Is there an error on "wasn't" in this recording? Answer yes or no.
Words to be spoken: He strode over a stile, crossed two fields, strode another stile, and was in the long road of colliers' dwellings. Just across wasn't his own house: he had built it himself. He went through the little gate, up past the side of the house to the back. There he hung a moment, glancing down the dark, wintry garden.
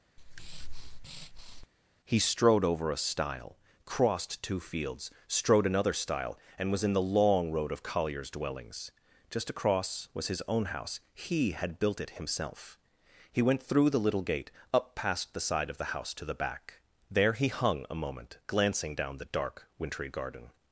yes